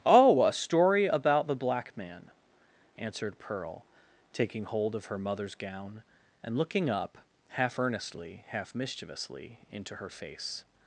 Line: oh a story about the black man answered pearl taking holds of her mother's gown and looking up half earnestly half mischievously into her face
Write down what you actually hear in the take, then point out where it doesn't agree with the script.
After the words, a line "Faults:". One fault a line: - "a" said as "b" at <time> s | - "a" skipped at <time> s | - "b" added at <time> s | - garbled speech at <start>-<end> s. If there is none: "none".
oh a story about the black man answered pearl taking hold of her mother's gown and looking up half earnestly half mischievously into her face
Faults:
- "holds" said as "hold" at 4.6 s